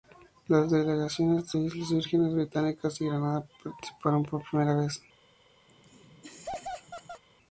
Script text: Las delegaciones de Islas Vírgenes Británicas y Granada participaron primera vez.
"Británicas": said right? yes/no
yes